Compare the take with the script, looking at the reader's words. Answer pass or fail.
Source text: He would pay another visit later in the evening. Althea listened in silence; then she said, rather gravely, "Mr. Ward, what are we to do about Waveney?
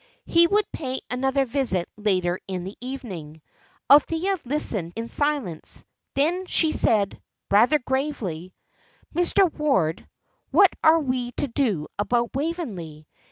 pass